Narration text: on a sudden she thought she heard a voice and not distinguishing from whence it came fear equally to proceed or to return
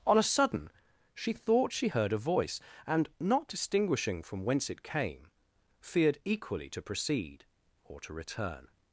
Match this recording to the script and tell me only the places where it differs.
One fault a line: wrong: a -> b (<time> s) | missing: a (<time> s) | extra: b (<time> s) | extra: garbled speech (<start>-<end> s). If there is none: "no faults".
wrong: fear -> feared (5.8 s)